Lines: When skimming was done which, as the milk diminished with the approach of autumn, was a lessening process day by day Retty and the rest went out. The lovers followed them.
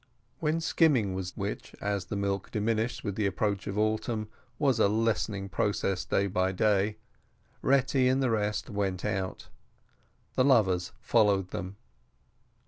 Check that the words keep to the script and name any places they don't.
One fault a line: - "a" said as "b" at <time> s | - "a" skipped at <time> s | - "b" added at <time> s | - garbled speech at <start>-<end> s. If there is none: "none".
- "done" skipped at 1.3 s